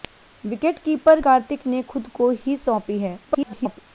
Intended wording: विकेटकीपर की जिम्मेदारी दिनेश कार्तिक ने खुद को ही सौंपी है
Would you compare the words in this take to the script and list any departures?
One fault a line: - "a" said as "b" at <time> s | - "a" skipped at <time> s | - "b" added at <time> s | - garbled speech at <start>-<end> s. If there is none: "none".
- "की जिम्मेदारी दिनेश" skipped at 1.2 s
- garbled speech at 3.3-3.8 s